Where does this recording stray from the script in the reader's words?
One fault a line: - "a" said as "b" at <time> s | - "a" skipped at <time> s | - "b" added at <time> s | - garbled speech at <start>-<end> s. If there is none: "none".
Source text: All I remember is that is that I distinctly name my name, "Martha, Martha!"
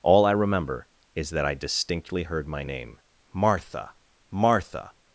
- "is that" skipped at 1.4 s
- "name" said as "heard" at 2.2 s